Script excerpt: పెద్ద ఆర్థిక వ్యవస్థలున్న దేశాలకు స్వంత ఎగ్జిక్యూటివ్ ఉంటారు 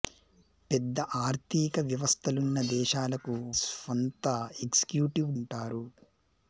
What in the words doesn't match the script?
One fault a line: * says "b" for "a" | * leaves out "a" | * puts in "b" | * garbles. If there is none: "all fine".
all fine